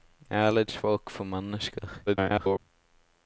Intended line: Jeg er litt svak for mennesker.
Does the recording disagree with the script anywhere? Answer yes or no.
yes